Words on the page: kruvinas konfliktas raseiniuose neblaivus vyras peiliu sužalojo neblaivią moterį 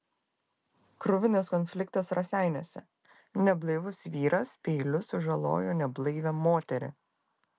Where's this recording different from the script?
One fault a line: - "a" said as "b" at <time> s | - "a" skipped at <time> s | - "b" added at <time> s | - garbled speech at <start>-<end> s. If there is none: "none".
none